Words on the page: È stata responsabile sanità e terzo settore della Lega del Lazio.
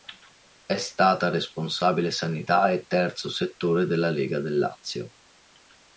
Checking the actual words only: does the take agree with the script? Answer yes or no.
yes